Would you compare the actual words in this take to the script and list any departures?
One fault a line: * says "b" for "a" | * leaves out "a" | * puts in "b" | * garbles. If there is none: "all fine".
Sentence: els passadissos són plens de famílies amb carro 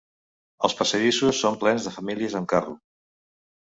all fine